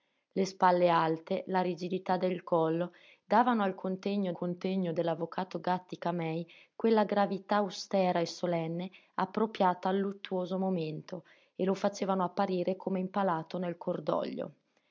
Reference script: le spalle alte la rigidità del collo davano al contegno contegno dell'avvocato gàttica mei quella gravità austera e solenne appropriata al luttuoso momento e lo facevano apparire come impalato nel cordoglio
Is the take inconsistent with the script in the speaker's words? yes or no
no